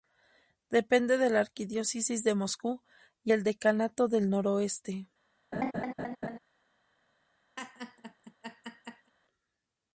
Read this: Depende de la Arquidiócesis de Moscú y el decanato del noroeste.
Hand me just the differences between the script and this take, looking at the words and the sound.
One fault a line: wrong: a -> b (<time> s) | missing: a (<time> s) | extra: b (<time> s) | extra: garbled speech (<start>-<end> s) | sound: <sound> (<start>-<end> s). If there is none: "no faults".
sound: laugh (5.5-6.4 s)
sound: laugh (7.6-9.1 s)